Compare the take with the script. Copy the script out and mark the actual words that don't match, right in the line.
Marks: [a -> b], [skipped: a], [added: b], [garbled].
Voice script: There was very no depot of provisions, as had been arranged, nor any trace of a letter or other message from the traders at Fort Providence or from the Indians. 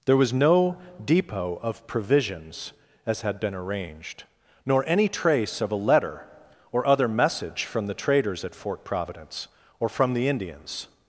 There was [skipped: very] no depot of provisions, as had been arranged, nor any trace of a letter or other message from the traders at Fort Providence or from the Indians.